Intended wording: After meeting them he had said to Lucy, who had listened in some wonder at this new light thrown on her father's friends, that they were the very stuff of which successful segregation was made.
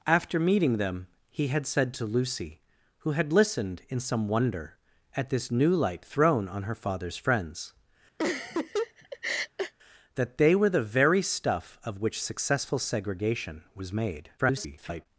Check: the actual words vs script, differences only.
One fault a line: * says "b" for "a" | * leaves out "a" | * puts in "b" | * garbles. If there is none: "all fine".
* garbles